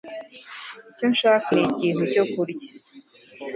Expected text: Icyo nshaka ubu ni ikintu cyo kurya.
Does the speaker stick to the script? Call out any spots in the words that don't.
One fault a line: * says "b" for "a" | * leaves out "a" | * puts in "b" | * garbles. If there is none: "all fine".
* leaves out "ubu"